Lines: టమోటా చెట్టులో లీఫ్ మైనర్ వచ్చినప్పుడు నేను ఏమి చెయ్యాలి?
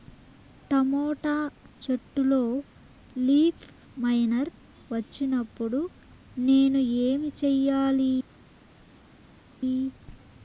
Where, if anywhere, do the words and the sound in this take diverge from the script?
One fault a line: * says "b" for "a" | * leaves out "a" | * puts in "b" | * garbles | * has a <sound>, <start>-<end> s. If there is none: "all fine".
all fine